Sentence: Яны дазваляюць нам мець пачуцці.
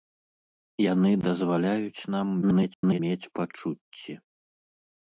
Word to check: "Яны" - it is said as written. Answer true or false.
true